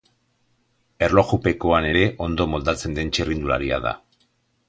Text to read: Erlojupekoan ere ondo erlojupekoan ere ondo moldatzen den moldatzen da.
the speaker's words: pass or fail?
fail